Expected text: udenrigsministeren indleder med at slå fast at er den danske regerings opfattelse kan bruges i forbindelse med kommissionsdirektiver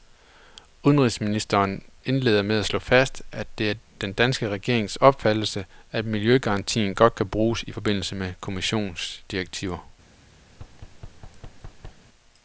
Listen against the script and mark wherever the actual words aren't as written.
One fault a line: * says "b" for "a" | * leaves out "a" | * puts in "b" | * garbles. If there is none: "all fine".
* puts in "det"
* puts in "at miljøgarantien godt"